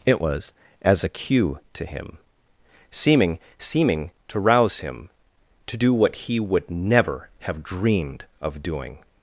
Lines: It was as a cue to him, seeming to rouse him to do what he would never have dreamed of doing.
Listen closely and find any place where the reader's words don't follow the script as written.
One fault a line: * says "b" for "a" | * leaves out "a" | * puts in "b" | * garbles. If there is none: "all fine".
* puts in "seeming"